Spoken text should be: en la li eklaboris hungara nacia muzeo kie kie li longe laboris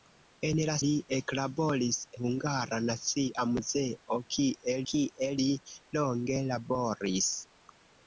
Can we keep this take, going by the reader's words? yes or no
yes